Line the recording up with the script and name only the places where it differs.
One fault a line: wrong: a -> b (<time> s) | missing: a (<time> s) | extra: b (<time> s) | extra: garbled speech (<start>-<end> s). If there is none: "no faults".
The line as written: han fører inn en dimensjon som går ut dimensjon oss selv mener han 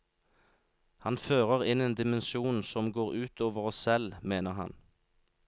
wrong: dimensjon -> over (3.5 s)